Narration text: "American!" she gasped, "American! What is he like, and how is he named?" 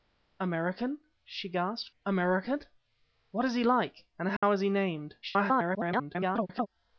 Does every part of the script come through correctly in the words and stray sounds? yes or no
no